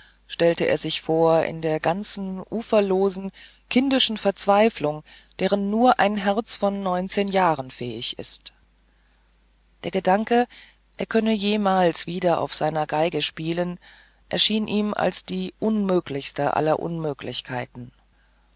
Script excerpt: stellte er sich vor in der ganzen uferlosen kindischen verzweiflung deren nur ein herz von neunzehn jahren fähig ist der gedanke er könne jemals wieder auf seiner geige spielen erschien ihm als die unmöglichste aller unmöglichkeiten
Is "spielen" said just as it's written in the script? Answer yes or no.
yes